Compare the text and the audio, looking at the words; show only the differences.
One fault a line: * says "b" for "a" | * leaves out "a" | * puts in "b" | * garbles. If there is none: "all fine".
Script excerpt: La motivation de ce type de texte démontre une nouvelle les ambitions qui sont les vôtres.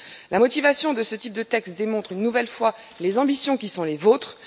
* puts in "fois"